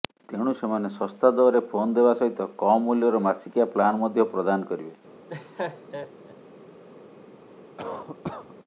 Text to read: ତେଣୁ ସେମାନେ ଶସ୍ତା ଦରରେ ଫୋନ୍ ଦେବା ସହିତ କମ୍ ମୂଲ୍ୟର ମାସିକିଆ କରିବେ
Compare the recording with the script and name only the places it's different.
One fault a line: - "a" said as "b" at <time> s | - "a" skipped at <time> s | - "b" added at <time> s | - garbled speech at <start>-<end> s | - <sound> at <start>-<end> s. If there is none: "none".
- "ପ୍ଲାନ୍ ମଧ୍ୟ ପ୍ରଦାନ" added at 3.8 s
- laugh at 5.3-6.4 s
- cough at 7.8-8.5 s